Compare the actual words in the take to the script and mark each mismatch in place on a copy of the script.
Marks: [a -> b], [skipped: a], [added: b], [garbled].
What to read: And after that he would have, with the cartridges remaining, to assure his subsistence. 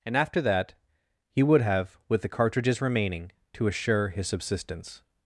And after that he would have, with the cartridges remaining, to assure his subsistence.